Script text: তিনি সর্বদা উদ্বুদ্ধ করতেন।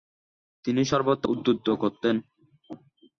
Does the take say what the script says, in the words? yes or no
yes